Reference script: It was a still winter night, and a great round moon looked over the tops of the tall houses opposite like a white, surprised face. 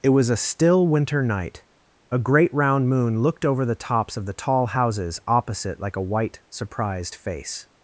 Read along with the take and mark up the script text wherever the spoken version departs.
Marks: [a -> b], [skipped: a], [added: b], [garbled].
It was a still winter night, [skipped: and] a great round moon looked over the tops of the tall houses opposite like a white, surprised face.